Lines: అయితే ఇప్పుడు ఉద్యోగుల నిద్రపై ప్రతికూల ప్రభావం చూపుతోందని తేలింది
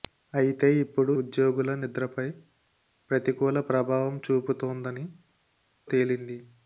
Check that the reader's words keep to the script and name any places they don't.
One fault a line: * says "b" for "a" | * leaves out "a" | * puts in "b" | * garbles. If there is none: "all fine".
all fine